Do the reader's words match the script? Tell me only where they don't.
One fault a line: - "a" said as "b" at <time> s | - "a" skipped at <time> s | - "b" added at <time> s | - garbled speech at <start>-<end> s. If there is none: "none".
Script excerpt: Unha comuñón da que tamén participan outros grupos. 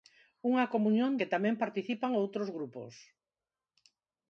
- "da" skipped at 1.1 s